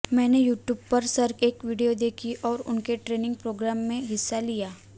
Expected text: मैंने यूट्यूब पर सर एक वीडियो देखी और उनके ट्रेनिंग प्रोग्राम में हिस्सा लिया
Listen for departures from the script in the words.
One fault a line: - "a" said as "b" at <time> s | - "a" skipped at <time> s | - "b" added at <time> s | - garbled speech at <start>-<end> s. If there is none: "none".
none